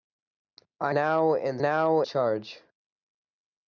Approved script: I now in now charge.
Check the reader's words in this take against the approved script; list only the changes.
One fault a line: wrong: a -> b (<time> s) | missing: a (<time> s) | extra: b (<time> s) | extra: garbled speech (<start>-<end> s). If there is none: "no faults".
no faults